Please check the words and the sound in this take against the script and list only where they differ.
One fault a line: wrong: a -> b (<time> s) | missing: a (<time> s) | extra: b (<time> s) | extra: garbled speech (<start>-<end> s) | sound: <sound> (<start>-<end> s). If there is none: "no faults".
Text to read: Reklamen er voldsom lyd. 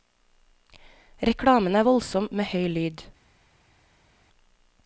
extra: med høy (2.3 s)